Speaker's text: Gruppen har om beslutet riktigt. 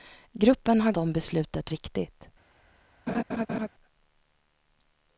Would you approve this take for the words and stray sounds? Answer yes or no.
no